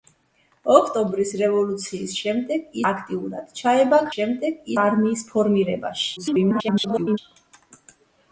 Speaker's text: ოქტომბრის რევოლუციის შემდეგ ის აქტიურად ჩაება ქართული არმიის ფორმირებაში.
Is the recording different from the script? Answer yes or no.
yes